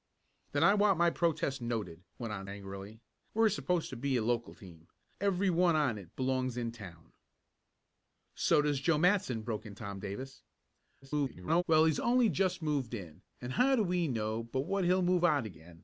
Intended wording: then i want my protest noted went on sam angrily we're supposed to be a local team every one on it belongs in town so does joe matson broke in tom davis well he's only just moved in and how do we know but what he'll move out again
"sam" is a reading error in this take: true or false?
true